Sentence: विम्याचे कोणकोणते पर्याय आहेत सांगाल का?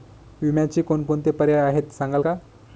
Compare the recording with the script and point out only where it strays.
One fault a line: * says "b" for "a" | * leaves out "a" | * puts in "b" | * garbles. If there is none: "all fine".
all fine